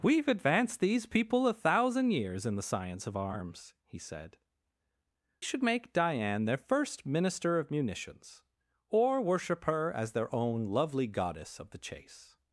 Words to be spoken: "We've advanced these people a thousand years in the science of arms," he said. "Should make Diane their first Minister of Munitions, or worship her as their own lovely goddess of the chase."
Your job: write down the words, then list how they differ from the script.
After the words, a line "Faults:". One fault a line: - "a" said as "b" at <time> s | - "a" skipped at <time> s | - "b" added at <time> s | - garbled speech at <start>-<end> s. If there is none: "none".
"We've advanced these people a thousand years in the science of arms," he said. "Should make Diane their first Minister of Munitions, or worship her as their own lovely goddess of the chase."
Faults:
none